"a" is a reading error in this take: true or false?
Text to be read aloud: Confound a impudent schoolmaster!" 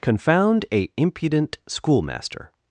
false